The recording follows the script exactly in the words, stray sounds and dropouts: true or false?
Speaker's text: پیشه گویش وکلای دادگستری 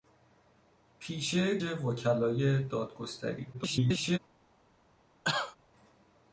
false